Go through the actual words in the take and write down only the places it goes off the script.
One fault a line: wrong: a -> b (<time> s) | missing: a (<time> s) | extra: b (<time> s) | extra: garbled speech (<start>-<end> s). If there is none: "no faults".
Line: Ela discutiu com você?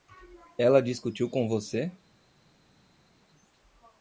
no faults